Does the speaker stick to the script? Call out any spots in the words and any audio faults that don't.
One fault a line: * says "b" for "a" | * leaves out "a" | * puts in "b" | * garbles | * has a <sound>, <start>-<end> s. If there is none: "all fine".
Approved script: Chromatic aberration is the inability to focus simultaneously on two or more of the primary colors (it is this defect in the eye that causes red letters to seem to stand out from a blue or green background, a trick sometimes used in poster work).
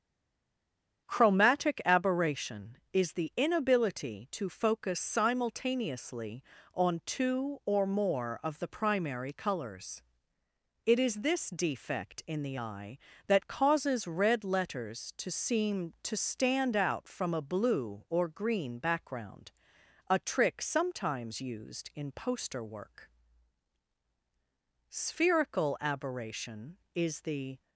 * puts in "Spherical aberration is the"